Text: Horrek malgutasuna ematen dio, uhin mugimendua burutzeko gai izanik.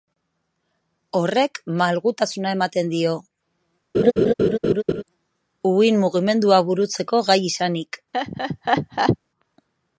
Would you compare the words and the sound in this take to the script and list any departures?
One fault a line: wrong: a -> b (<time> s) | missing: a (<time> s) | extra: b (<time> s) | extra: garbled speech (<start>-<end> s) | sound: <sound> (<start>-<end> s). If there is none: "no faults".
sound: laugh (3.9-5.0 s)
sound: laugh (8.1-9.2 s)